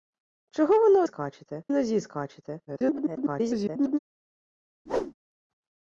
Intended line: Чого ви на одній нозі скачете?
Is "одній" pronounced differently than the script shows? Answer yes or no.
yes